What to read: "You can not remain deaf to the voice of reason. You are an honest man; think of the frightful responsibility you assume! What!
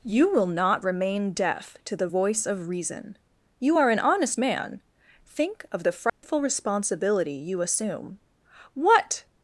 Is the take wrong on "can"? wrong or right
wrong